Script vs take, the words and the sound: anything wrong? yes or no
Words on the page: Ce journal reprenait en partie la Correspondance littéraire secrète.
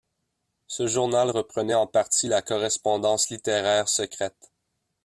no